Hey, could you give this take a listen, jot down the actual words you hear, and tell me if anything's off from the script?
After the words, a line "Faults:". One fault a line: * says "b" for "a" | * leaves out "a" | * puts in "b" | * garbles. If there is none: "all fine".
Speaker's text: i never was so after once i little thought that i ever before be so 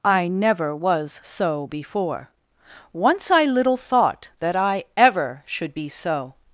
i never was so before once i little thought that i ever should be so
Faults:
* says "before" for "after"
* says "should" for "before"